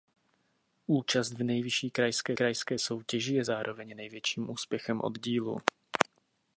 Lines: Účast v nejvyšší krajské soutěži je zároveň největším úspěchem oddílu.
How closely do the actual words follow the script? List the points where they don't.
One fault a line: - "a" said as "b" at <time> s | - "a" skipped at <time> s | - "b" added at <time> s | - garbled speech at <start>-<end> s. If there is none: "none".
- "krajské" added at 2.3 s